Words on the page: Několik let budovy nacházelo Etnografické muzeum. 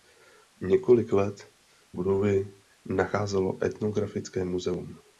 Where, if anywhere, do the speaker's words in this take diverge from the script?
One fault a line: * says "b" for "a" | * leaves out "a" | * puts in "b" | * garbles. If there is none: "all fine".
all fine